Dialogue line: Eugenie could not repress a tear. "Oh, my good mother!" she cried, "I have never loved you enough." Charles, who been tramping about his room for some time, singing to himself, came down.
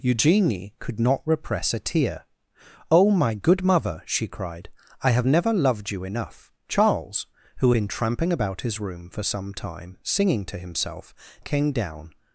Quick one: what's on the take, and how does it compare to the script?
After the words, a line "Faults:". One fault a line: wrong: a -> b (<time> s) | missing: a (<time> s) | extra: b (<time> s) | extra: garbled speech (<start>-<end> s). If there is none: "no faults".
Eugenie could not repress a tear. "Oh, my good mother!" she cried, "I have never loved you enough." Charles, who been tramping about his room for some time, singing to himself, came down.
Faults:
no faults